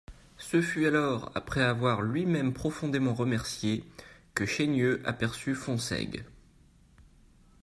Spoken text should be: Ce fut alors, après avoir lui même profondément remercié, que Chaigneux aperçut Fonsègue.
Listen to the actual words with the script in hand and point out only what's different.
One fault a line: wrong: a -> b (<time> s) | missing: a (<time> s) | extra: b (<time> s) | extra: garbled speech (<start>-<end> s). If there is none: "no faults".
no faults